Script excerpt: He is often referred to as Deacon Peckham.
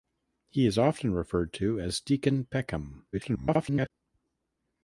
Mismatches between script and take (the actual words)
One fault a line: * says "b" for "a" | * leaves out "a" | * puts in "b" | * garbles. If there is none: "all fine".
* garbles